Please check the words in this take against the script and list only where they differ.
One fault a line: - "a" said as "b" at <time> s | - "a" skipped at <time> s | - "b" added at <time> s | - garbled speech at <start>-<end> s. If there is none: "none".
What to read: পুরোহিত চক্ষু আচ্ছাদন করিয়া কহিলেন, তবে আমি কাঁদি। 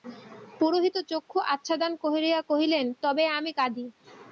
none